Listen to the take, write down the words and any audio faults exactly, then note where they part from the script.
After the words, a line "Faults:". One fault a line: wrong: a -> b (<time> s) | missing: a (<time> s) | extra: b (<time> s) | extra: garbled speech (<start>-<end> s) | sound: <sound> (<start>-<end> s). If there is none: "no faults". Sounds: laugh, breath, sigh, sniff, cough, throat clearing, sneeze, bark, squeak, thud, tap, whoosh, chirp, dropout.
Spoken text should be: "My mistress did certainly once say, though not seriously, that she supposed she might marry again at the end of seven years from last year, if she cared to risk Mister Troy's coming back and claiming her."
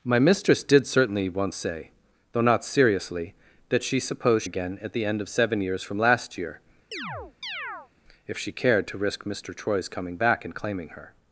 "My mistress did certainly once say, though not seriously, that she supposed again at the end of seven years from last year, if she cared to risk Mister Troy's coming back and claiming her."
Faults:
missing: she might marry (4.4 s)
sound: chirp (6.9-7.9 s)